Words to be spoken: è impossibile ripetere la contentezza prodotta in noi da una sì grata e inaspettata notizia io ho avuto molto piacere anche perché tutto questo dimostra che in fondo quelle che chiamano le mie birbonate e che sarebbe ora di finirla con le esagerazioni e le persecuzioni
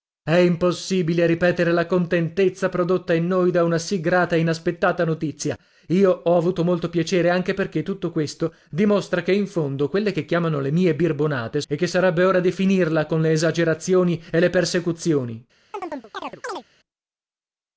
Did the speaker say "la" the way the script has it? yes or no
yes